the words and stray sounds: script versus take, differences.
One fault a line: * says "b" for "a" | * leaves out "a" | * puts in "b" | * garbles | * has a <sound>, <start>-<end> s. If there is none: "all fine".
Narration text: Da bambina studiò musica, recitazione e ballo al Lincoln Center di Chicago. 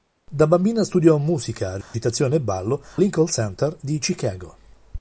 * has a dropout, 1.8-1.9 s
* leaves out "al"